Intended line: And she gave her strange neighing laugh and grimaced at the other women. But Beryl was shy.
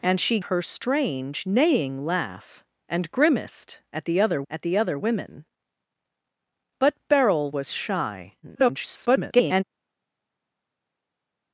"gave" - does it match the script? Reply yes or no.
no